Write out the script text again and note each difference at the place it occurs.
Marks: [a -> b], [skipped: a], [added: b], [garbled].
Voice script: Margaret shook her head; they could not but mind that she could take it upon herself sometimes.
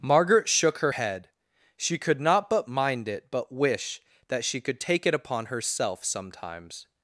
Margaret shook her head; [they -> she] could not but mind [added: it but wish] that she could take it upon herself sometimes.